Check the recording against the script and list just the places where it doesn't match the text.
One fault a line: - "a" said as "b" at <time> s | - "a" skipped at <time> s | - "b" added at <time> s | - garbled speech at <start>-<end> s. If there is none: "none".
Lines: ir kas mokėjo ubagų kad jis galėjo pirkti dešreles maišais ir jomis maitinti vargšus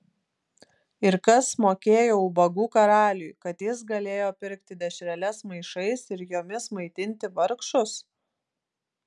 - "karaliui" added at 2.8 s